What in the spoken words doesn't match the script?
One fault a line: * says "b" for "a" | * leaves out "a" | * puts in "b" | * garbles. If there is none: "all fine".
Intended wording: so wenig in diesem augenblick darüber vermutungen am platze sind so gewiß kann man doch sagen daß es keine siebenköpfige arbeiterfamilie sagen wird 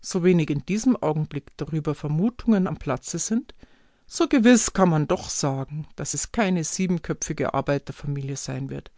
* says "sein" for "sagen"